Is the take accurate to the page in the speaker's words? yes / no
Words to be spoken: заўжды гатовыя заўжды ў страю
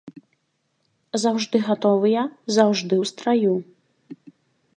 yes